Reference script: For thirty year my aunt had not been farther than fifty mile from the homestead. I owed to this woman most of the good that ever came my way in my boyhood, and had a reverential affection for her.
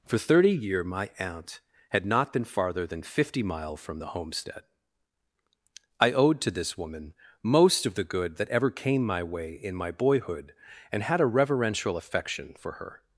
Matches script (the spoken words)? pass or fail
pass